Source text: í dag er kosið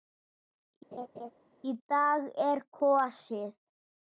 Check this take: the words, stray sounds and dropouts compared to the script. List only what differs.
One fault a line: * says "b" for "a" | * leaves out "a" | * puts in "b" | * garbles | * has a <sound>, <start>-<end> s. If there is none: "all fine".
* has a laugh, 0.9-1.3 s